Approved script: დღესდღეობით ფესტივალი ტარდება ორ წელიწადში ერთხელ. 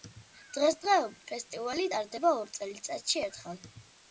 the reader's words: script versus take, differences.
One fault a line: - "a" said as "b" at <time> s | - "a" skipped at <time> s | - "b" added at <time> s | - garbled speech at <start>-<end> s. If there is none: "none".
none